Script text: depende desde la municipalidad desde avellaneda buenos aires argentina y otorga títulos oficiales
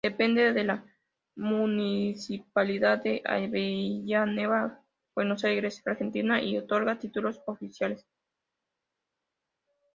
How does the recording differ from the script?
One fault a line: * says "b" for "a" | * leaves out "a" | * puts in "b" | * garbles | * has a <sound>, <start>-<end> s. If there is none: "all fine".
* says "de" for "desde"
* says "de" for "desde"